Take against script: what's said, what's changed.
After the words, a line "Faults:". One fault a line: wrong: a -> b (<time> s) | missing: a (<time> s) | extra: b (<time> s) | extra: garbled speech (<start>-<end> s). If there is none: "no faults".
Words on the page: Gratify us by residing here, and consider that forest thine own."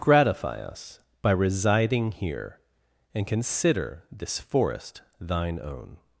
Gratify us by residing here, and consider this forest thine own."
Faults:
wrong: that -> this (4.1 s)